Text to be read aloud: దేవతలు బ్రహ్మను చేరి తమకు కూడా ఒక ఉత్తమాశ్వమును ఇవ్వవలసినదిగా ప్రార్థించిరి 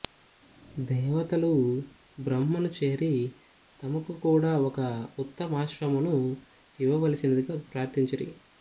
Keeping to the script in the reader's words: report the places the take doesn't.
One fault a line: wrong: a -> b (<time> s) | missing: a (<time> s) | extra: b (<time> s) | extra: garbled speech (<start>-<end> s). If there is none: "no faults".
no faults